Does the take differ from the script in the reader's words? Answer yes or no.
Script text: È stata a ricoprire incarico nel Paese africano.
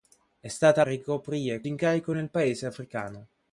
no